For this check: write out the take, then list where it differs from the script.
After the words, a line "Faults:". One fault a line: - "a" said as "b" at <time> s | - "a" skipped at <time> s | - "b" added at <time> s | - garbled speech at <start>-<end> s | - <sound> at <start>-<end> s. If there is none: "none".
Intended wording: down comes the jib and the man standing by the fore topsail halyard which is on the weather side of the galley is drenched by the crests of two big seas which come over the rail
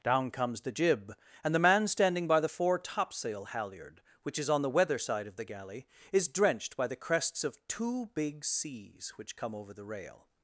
down comes the jib and the man standing by the fore topsail halyard which is on the weather side of the galley is drenched by the crests of two big seas which come over the rail
Faults:
none